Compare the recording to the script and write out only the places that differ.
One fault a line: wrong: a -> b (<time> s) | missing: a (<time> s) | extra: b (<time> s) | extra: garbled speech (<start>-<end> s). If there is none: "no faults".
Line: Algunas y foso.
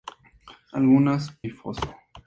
no faults